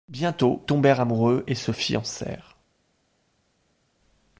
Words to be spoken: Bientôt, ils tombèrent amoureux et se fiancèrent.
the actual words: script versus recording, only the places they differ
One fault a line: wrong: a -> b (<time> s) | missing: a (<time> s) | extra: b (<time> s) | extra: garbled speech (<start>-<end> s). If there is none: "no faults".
missing: ils (0.7 s)